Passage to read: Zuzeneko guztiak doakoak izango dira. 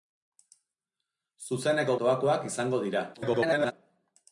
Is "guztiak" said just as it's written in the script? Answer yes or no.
no